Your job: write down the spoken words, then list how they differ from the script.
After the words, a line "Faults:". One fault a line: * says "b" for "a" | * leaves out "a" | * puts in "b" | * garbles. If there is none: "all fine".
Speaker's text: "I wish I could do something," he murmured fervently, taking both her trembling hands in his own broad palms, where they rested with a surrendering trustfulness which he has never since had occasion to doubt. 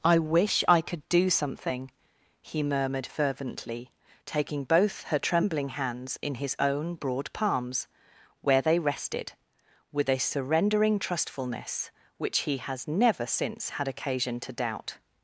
"I wish I could do something," he murmured fervently, taking both her trembling hands in his own broad palms, where they rested with a surrendering trustfulness which he has never since had occasion to doubt.
Faults:
all fine